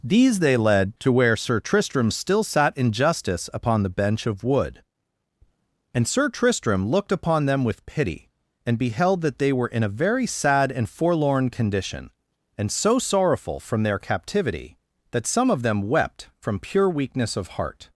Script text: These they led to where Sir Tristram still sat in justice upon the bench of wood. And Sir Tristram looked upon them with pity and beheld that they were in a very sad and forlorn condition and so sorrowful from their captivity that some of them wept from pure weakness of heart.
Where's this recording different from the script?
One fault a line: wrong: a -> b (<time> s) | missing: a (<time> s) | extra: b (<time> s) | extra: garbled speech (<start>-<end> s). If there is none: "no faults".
no faults